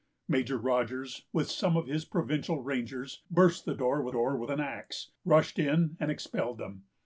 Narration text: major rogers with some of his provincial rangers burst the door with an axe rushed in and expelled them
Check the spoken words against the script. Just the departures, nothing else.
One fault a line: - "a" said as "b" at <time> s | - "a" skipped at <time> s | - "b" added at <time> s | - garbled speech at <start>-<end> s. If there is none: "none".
- "door with" added at 4.1 s